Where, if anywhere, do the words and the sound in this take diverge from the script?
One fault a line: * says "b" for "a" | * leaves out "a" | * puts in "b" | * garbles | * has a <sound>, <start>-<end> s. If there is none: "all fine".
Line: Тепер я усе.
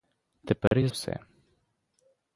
* has a dropout, 0.7-0.7 s